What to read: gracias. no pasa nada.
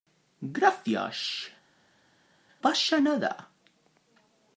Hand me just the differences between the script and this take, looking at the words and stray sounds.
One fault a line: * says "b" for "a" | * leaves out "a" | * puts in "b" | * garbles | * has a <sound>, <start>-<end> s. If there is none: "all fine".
* leaves out "no"